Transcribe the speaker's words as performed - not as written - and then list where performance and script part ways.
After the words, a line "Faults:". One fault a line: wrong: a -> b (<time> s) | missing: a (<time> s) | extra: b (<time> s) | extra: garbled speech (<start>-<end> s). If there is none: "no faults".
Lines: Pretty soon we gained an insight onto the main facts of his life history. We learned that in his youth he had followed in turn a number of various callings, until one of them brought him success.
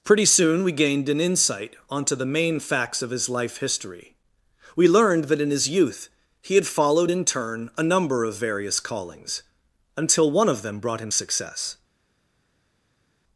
Pretty soon we gained an insight onto the main facts of his life history. We learned that in his youth he had followed in turn a number of various callings, until one of them brought him success.
Faults:
no faults